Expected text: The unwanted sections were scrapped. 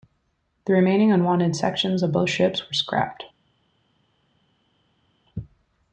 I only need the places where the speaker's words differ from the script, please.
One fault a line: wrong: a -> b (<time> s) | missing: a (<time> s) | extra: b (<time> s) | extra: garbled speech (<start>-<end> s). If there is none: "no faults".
extra: remaining (0.7 s)
extra: of both ships (2.0 s)